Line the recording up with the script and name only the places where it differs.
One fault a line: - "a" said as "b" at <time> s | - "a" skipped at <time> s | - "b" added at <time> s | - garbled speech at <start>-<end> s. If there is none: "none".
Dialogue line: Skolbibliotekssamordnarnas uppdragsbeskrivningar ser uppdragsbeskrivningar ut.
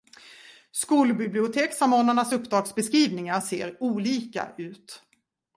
- "uppdragsbeskrivningar" said as "olika" at 3.8 s